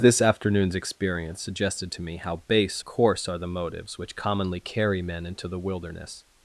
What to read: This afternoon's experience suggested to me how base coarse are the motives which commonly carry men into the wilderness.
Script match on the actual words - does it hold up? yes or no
yes